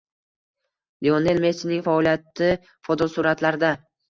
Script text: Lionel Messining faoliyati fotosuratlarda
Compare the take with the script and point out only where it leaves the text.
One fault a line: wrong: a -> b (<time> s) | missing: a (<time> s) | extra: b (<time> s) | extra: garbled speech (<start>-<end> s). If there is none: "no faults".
no faults